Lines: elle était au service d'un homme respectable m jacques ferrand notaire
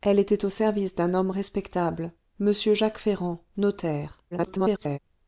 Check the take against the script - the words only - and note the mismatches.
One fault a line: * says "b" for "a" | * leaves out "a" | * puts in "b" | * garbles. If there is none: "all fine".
* garbles